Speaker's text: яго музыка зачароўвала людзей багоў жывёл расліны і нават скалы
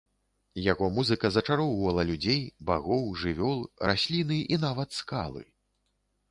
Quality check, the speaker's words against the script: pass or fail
pass